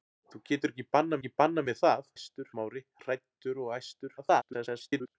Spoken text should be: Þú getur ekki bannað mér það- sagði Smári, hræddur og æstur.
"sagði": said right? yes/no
no